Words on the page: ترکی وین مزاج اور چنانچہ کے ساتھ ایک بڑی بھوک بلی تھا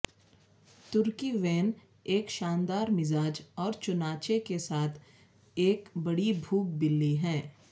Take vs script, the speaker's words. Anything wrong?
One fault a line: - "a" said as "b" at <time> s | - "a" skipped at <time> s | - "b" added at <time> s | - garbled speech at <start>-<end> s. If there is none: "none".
- "ایک شاندار" added at 2.1 s
- "تھا" said as "ہے" at 7.2 s